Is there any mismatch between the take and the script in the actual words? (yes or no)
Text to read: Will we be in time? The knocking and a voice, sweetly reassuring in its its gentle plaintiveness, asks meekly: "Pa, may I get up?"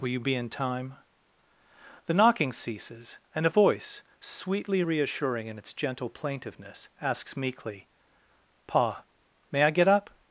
yes